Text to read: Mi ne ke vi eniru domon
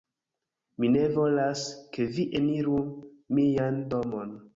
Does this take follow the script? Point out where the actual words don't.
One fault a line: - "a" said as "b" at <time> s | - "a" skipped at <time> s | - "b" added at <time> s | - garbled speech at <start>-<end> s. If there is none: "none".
- "volas" added at 1.2 s
- "mian" added at 3.4 s